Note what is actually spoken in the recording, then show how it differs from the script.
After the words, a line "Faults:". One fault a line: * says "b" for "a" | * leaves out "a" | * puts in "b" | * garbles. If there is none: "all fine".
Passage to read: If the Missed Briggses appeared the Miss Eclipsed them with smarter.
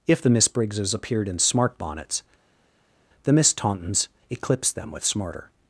If the Miss Briggses appeared in smart bonnets, the Miss Tauntons eclipsed them with smarter.
Faults:
* says "Miss" for "Missed"
* puts in "in smart bonnets"
* puts in "Tauntons"